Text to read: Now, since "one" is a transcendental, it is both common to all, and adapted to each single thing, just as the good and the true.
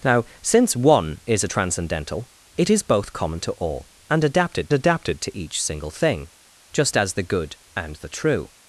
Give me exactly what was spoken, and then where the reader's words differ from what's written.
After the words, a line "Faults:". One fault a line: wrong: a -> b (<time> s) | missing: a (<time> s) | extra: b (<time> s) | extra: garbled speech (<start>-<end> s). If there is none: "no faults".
Now, since "one" is a transcendental, it is both common to all, and adapted adapted to each single thing, just as the good and the true.
Faults:
extra: adapted (4.7 s)